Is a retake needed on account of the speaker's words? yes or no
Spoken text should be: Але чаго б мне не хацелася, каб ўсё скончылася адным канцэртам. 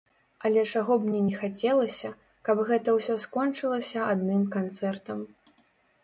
yes